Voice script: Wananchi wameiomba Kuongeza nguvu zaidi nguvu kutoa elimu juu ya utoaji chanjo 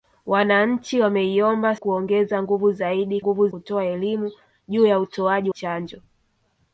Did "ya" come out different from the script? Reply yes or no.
no